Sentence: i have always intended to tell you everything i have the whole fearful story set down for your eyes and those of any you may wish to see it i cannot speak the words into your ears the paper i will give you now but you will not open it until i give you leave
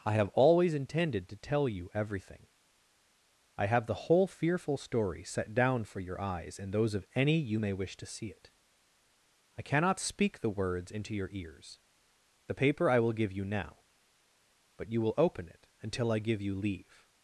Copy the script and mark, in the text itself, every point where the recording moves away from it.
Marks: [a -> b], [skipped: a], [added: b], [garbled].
i have always intended to tell you everything i have the whole fearful story set down for your eyes and those of any you may wish to see it i cannot speak the words into your ears the paper i will give you now but you will [skipped: not] open it until i give you leave